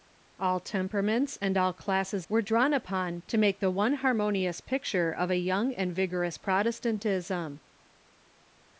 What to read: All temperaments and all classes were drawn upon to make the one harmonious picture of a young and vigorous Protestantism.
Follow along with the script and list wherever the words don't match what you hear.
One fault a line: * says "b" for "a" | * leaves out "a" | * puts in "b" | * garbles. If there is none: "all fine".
all fine